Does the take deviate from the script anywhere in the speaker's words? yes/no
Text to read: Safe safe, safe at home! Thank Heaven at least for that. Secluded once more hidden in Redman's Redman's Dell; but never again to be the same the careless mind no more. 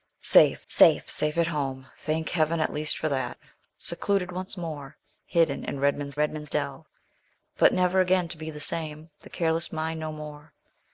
no